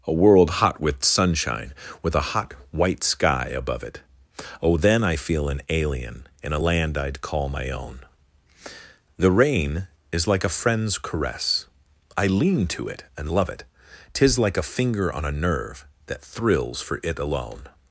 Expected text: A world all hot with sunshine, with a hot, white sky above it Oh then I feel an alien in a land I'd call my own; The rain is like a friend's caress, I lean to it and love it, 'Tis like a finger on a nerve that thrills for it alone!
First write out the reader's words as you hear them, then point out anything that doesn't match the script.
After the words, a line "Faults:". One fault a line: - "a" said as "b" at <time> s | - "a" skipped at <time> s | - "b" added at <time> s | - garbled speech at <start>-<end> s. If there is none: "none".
A world hot with sunshine, with a hot, white sky above it Oh then I feel an alien in a land I'd call my own; The rain is like a friend's caress, I lean to it and love it, 'Tis like a finger on a nerve that thrills for it alone!
Faults:
- "all" skipped at 0.6 s